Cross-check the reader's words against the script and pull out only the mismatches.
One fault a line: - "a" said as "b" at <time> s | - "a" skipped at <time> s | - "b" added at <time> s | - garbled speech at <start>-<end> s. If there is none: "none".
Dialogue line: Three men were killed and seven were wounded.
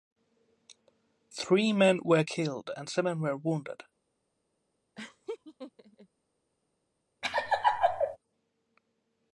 none